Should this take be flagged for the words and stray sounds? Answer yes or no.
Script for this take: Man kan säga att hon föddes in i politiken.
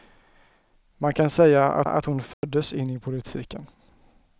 yes